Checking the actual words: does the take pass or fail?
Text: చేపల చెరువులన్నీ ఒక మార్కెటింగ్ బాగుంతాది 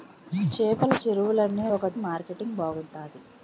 pass